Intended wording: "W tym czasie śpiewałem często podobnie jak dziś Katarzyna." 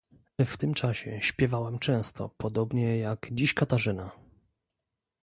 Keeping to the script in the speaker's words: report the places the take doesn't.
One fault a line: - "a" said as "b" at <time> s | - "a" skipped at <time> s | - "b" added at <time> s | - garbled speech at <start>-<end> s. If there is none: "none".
none